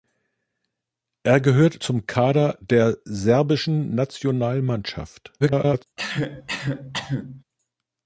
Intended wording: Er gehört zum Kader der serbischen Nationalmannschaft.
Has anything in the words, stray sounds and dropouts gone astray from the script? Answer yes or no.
yes